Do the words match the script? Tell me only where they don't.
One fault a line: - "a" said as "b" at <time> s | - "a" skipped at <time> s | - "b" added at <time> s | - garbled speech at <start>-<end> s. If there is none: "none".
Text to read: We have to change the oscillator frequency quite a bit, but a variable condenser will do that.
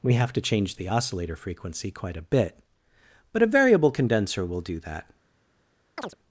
none